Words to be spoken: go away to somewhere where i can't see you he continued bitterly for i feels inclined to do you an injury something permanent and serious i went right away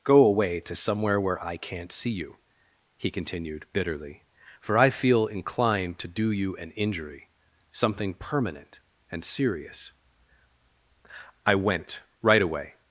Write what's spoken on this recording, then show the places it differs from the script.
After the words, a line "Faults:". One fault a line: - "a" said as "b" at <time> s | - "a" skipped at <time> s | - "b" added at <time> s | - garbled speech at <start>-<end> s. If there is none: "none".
go away to somewhere where i can't see you he continued bitterly for i feel inclined to do you an injury something permanent and serious i went right away
Faults:
- "feels" said as "feel" at 4.9 s